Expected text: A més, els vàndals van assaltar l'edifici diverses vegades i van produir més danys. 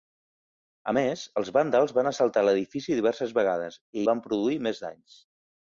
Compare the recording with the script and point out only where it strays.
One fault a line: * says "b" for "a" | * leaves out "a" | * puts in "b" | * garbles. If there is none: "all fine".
all fine